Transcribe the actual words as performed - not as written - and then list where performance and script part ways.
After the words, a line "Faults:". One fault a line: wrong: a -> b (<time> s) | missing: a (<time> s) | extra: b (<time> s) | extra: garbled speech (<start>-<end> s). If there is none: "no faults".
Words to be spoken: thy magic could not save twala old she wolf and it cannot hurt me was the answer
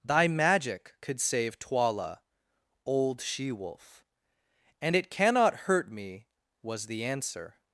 thy magic could save twala old she wolf and it cannot hurt me was the answer
Faults:
missing: not (1.2 s)